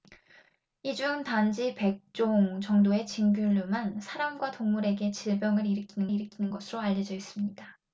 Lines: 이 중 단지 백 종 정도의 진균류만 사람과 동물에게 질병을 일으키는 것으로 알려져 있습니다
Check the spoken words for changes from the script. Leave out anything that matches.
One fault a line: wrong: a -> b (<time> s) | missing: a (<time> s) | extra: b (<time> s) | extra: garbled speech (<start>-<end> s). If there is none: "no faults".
extra: 일으키는 (6.1 s)